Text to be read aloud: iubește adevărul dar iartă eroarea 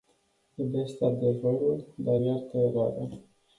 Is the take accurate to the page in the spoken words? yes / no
yes